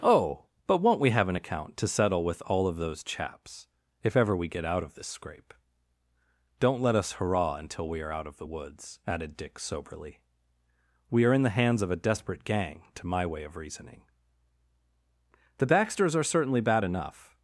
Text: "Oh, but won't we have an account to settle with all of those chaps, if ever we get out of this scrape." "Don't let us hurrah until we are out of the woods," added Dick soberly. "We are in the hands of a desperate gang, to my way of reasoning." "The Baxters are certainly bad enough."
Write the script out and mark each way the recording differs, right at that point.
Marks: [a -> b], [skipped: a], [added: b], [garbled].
"Oh, but won't we have an account to settle with all of those chaps, if ever we get out of this scrape." "Don't let us hurrah until we are out of the woods," added Dick soberly. "We are in the hands of a desperate gang, to my way of reasoning." "The Baxters are certainly bad enough."